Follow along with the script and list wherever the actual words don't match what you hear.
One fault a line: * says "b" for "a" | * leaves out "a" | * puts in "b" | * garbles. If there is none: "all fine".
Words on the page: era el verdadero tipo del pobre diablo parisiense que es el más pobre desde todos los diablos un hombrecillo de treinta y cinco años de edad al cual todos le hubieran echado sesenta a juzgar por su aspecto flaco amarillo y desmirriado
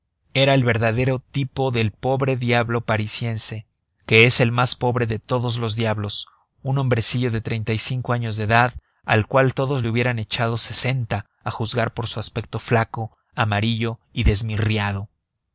* says "de" for "desde"